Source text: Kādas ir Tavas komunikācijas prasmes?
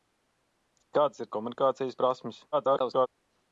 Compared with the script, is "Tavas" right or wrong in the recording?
wrong